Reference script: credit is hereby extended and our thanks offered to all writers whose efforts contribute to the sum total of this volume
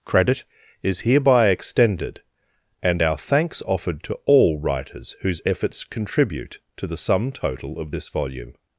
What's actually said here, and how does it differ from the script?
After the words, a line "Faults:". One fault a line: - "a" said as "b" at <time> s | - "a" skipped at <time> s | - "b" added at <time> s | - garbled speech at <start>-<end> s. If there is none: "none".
credit is hereby extended and our thanks offered to all writers whose efforts contribute to the sum total of this volume
Faults:
none